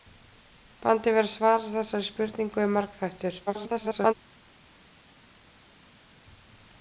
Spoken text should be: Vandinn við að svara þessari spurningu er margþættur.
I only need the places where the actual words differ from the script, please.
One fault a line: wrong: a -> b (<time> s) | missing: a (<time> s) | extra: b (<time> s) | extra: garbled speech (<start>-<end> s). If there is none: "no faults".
extra: garbled speech (3.5-4.1 s)